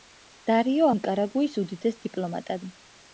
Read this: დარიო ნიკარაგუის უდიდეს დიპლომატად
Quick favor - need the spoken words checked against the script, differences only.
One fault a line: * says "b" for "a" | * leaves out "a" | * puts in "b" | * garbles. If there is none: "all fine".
all fine